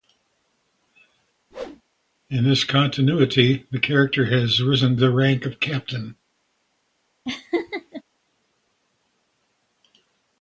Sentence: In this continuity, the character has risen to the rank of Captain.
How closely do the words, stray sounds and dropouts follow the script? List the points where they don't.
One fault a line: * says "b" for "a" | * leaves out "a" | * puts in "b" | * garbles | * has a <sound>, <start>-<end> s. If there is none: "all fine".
* has a whoosh, 1.5-1.8 s
* leaves out "to"
* has a laugh, 7.3-8.0 s